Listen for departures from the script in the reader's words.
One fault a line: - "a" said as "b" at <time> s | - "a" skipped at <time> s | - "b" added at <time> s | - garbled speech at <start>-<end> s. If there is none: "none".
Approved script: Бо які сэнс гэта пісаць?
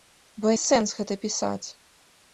- "які" skipped at 0.5 s